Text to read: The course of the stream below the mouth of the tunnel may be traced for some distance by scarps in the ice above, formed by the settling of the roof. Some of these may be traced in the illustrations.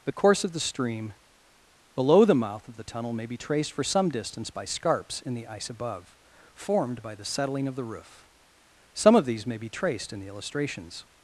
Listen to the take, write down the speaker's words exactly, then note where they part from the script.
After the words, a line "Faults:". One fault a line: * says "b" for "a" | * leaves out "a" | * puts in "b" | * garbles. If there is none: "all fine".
The course of the stream below the mouth of the tunnel may be traced for some distance by scarps in the ice above, formed by the settling of the roof. Some of these may be traced in the illustrations.
Faults:
all fine